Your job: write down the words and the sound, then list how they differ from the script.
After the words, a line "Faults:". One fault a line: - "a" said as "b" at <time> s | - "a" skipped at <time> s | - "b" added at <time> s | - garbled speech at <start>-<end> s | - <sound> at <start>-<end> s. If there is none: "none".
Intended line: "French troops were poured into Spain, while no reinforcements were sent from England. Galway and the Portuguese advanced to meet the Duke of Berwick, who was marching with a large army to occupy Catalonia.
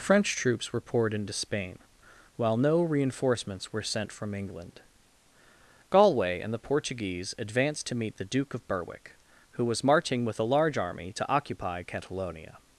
"French troops were poured into Spain, while no reinforcements were sent from England. Galway and the Portuguese advanced to meet the Duke of Berwick, who was marching with a large army to occupy Catalonia.
Faults:
none